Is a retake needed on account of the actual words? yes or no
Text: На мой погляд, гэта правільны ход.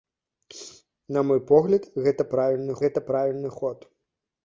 yes